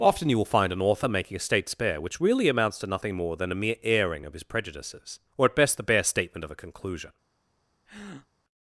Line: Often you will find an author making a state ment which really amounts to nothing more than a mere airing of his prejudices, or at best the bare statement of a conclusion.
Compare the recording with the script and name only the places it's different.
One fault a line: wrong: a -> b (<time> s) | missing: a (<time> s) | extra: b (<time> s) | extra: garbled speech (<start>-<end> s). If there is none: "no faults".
wrong: ment -> spare (1.7 s)